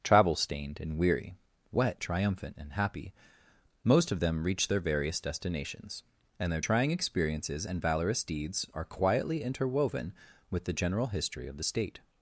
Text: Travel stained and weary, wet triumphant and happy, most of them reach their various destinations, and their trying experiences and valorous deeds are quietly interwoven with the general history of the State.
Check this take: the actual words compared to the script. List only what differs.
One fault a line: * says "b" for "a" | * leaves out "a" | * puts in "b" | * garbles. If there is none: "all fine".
all fine